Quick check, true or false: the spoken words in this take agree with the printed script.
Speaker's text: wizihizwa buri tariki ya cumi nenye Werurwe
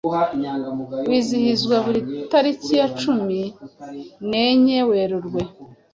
true